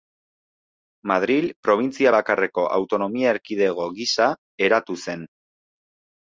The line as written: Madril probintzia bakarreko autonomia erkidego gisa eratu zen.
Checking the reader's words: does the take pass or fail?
pass